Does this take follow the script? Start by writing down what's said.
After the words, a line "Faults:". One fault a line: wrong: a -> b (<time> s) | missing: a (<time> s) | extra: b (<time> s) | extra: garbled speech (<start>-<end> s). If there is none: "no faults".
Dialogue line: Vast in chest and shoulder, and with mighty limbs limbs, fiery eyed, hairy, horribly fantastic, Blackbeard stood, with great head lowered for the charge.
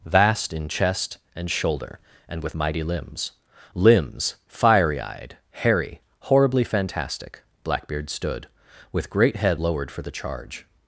Vast in chest and shoulder, and with mighty limbs limbs, fiery eyed, hairy, horribly fantastic, Blackbeard stood, with great head lowered for the charge.
Faults:
no faults